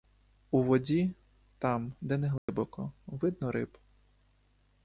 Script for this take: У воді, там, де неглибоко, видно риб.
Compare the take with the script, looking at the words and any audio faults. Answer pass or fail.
fail